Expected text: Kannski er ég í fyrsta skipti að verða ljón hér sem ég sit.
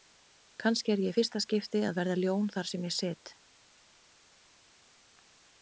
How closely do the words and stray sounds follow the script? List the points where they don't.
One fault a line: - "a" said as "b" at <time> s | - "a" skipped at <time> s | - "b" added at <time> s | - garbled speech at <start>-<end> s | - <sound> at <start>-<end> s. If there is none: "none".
- "hér" said as "þar" at 2.6 s